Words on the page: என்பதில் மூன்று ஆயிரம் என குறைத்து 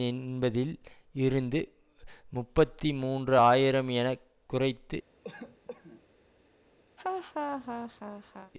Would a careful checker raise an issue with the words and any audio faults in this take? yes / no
yes